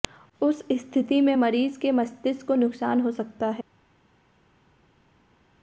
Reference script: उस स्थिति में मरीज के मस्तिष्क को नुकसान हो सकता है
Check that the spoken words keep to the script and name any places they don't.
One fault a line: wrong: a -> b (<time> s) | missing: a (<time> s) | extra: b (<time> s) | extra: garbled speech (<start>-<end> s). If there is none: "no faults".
no faults